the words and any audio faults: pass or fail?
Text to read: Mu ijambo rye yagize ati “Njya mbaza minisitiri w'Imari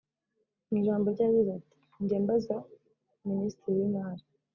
pass